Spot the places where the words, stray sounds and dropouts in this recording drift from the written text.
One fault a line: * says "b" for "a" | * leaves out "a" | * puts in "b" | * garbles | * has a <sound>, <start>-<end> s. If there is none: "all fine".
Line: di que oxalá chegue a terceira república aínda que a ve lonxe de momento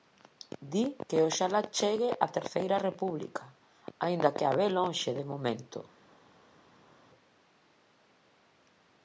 all fine